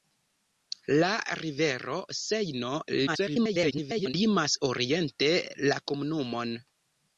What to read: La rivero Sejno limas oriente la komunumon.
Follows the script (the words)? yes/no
no